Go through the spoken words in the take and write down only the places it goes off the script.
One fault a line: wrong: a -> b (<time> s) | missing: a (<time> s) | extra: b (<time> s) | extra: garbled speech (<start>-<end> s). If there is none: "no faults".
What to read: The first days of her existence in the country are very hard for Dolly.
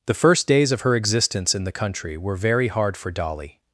wrong: are -> were (2.2 s)